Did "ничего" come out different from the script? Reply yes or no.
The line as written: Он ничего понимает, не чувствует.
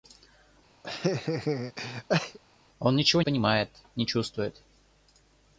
no